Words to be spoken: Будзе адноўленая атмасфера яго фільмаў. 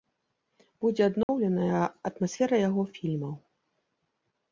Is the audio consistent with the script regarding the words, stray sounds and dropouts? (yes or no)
no